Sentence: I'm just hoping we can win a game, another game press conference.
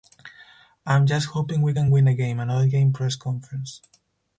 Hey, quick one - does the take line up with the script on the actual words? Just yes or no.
yes